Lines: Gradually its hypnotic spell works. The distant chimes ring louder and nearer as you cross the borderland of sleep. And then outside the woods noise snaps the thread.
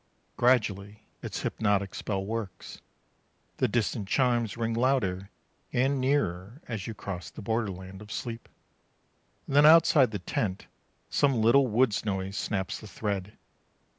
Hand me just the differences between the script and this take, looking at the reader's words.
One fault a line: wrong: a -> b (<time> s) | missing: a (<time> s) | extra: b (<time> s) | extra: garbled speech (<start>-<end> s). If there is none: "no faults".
extra: tent some little (10.2 s)